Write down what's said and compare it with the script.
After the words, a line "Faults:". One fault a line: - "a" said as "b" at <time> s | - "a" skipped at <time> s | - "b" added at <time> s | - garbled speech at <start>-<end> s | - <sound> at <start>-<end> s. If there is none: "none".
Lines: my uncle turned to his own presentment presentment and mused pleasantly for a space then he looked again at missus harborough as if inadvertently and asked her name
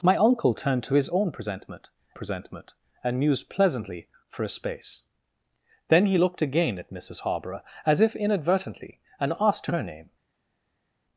my uncle turned to his own presentment presentment and mused pleasantly for a space then he looked again at missus harborough as if inadvertently and asked her name
Faults:
none